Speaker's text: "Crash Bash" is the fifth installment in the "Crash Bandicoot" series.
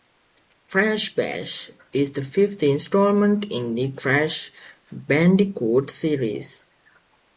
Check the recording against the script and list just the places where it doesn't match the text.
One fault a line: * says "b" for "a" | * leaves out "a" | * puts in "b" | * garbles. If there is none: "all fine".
all fine